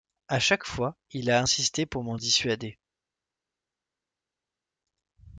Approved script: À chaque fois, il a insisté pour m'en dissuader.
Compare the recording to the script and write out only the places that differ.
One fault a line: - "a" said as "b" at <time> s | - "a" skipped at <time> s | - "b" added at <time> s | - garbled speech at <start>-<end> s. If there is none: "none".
none